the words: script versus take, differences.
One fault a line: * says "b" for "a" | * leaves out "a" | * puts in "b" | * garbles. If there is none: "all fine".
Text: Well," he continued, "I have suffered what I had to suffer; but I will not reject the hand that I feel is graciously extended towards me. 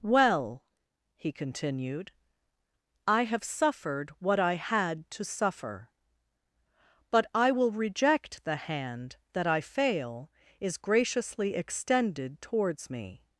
* leaves out "not"
* says "fail" for "feel"